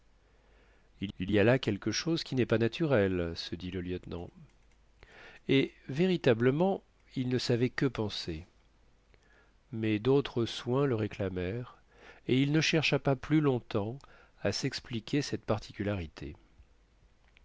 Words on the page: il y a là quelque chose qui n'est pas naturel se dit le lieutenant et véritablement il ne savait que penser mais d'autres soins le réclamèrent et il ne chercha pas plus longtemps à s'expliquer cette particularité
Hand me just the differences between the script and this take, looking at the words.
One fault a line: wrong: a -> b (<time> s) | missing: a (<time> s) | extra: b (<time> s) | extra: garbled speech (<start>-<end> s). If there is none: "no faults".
extra: il (1.2 s)